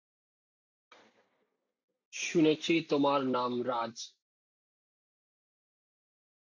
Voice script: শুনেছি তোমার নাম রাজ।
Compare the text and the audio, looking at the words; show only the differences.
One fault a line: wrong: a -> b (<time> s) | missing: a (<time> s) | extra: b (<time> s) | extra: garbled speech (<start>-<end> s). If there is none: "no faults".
no faults